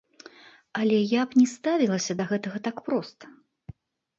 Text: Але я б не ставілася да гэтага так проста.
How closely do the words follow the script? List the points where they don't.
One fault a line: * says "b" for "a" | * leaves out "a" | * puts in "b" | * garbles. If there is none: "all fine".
all fine